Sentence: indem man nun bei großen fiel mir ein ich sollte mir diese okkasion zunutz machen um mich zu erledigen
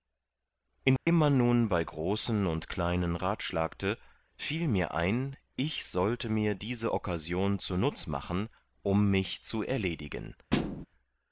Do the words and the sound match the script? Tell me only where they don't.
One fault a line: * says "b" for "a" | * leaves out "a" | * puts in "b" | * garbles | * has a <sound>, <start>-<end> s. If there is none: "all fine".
* has a dropout, 1.0-1.1 s
* puts in "und kleinen ratschlagte"
* has a thud, 10.5-10.9 s